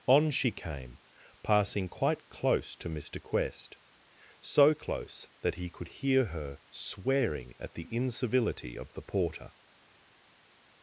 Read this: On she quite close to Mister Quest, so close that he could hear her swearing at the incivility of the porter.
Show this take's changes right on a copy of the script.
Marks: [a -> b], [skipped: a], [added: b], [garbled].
On she [added: came passing] quite close to Mister Quest, so close that he could hear her swearing at the incivility of the porter.